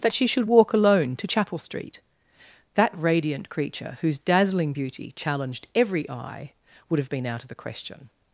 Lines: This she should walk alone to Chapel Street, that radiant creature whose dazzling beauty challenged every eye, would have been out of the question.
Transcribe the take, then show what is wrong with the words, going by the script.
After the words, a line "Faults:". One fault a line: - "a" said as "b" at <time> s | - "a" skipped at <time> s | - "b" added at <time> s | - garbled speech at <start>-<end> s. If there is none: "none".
That she should walk alone to Chapel Street, that radiant creature whose dazzling beauty challenged every eye, would have been out of the question.
Faults:
- "This" said as "That" at 0.0 s